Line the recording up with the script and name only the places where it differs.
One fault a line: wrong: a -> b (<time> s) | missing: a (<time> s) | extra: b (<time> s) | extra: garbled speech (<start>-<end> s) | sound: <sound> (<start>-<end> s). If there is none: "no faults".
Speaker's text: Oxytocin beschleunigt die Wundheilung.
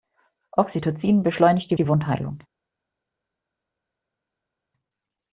extra: die (1.8 s)